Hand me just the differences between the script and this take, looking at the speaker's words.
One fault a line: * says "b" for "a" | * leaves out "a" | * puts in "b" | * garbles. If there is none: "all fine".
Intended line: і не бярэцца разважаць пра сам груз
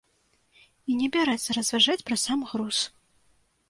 all fine